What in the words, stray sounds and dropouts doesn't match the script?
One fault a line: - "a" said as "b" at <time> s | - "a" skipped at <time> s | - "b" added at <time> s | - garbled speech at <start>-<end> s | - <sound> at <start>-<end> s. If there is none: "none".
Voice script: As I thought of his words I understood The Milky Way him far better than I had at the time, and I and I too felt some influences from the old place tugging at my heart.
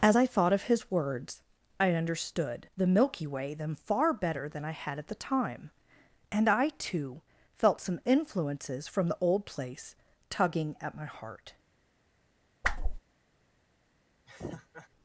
- "him" said as "them" at 3.5 s
- "and I" skipped at 6.7 s
- whoosh at 12.6-13.0 s
- laugh at 14.3-14.9 s